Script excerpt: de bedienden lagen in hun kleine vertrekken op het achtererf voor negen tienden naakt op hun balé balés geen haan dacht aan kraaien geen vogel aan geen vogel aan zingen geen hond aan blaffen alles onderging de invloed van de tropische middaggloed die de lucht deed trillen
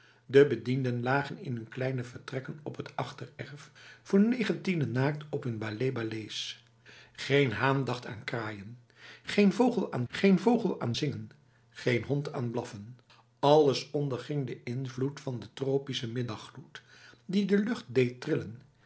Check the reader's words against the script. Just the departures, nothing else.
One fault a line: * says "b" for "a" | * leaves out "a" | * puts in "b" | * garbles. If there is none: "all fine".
all fine